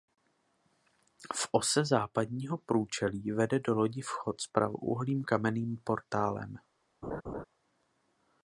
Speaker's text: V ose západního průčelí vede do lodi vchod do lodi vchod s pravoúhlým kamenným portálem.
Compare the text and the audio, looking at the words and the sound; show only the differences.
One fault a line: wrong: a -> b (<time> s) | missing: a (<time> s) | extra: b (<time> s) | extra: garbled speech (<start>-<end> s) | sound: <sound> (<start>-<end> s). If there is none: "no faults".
missing: do lodi vchod (4.4 s)
sound: laugh (7.0-7.4 s)